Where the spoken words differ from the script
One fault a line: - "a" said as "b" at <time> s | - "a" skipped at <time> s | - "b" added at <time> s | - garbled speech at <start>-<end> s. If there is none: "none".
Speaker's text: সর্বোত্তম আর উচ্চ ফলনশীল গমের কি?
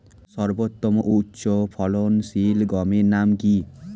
- "আর" said as "ও" at 1.0 s
- "নাম" added at 3.1 s